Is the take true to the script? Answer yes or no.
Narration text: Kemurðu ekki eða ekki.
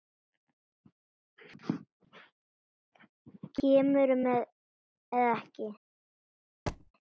no